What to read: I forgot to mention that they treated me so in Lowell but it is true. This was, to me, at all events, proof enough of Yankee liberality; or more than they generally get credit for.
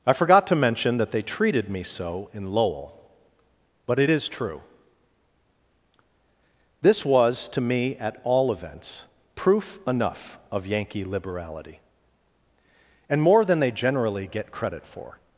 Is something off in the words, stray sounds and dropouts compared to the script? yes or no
yes